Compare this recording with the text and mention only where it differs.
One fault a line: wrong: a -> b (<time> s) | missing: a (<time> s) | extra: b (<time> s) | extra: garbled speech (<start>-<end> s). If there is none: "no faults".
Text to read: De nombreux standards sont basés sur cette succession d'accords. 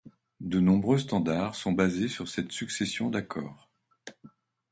no faults